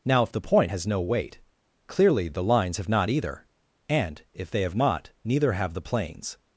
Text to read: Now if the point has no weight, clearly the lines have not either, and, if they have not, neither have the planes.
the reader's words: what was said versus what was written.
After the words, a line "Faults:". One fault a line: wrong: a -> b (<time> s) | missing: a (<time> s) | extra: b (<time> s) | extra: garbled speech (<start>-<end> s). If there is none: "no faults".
Now if the point has no weight, clearly the lines have not either, and, if they have not, neither have the planes.
Faults:
no faults